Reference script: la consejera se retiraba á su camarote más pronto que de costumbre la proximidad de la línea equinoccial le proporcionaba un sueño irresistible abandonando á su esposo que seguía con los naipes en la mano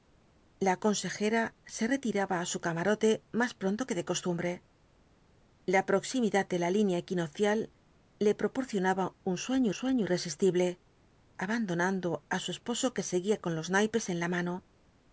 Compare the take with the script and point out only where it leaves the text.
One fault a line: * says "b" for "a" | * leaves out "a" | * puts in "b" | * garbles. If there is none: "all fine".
* puts in "sueño"